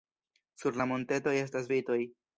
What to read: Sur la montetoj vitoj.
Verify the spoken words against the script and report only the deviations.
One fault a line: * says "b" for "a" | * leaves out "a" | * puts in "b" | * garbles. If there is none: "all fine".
* puts in "estas"